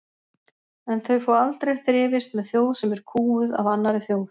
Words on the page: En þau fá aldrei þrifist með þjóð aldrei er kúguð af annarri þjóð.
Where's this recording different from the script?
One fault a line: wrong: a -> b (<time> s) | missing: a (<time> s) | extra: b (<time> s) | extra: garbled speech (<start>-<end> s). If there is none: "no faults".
wrong: aldrei -> sem (2.8 s)